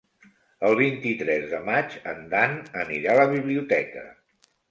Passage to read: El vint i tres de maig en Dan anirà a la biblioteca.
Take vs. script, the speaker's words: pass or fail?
pass